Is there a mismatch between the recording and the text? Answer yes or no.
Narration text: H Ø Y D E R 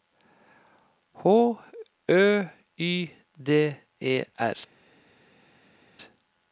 no